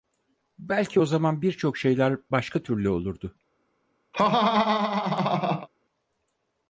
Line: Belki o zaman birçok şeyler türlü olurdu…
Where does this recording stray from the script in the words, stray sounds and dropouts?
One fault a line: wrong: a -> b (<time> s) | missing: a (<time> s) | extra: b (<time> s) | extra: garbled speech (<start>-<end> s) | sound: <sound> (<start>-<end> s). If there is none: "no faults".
extra: başka (2.3 s)
sound: laugh (4.1-5.7 s)